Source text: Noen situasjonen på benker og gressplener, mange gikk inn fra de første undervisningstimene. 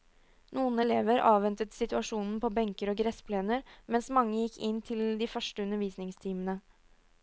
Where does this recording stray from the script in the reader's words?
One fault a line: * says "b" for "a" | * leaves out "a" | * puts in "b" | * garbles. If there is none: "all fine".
* puts in "elever avventet"
* puts in "mens"
* says "til" for "fra"